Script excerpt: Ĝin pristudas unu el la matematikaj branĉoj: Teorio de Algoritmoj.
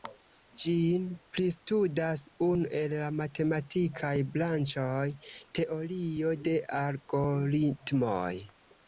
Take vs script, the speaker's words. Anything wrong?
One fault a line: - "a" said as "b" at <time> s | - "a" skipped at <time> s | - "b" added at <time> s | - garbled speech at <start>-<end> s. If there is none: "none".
none